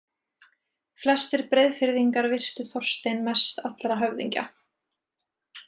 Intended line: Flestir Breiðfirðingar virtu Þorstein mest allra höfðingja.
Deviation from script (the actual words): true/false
false